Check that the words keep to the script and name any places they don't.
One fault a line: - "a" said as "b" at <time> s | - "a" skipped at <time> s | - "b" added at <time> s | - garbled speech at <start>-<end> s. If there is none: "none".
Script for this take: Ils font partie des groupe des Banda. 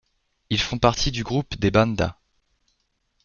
- "des" said as "du" at 1.1 s